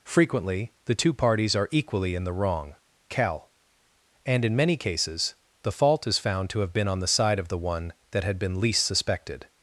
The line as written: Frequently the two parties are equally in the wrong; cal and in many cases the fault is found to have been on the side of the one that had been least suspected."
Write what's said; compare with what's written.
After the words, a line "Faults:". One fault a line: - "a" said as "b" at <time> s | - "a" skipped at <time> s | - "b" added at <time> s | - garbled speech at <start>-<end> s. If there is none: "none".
Frequently the two parties are equally in the wrong; cal and in many cases the fault is found to have been on the side of the one that had been least suspected."
Faults:
none